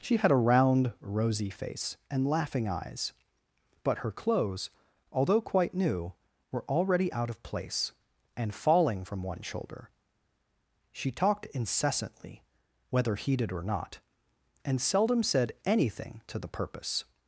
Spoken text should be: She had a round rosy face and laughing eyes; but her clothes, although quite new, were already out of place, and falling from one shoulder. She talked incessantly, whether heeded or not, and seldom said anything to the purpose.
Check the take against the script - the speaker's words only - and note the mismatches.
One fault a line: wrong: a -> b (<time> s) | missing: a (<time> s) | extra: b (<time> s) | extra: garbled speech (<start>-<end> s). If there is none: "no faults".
no faults